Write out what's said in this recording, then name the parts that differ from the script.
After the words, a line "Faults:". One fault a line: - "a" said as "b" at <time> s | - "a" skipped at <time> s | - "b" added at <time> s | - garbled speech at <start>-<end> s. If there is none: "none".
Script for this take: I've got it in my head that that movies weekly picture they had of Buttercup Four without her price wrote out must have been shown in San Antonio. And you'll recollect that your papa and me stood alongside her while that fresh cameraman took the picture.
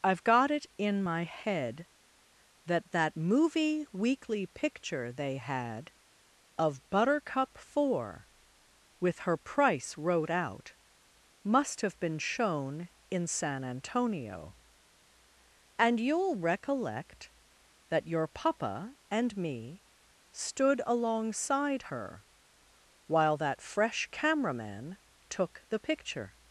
I've got it in my head that that movie weekly picture they had of Buttercup Four with her price wrote out must have been shown in San Antonio. And you'll recollect that your papa and me stood alongside her while that fresh cameraman took the picture.
Faults:
- "movies" said as "movie" at 3.2 s
- "without" said as "with" at 9.0 s